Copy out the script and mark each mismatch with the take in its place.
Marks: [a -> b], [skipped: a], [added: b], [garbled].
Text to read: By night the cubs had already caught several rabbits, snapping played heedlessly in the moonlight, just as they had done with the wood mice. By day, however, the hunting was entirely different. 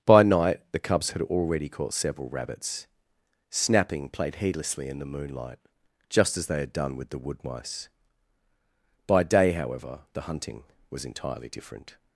By night the cubs had already caught several rabbits, snapping played heedlessly in the moonlight, just as they had done with the wood mice. By day, however, the hunting was entirely different.